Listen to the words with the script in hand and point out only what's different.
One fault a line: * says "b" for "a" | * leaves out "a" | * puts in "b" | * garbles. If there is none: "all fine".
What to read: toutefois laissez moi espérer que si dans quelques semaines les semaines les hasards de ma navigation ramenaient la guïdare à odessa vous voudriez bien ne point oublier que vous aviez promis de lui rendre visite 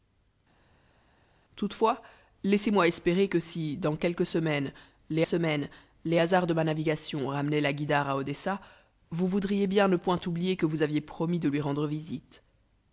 all fine